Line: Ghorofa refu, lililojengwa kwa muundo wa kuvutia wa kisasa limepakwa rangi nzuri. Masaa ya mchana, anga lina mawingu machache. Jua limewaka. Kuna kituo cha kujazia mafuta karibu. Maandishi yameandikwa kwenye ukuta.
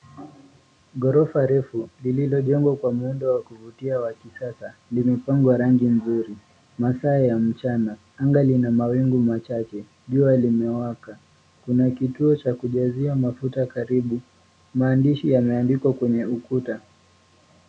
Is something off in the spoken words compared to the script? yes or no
no